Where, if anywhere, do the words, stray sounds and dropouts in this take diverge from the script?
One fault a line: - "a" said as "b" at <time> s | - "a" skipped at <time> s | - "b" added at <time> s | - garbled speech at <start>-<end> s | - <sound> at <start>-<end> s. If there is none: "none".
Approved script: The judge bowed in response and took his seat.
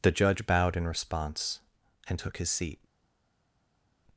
none